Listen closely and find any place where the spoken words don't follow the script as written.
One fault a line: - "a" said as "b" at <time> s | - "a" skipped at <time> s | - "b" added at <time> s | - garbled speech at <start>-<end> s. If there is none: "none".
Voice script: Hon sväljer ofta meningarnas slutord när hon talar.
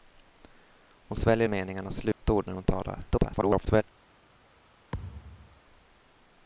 - "ofta" skipped at 1.5 s
- garbled speech at 3.1-3.8 s